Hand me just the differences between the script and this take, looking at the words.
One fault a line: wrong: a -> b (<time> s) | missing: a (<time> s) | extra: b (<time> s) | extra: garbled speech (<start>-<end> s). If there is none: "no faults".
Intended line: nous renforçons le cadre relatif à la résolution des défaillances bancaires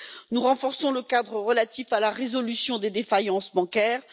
no faults